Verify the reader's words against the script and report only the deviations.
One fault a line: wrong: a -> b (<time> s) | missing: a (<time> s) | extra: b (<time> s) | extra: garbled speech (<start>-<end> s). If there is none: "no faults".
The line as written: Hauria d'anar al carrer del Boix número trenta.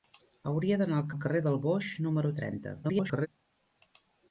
extra: al (1.1 s)
extra: garbled speech (2.8-3.3 s)